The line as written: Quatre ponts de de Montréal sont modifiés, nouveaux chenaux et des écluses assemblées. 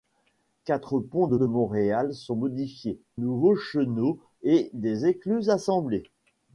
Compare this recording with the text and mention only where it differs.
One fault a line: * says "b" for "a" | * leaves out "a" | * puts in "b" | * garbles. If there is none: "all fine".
all fine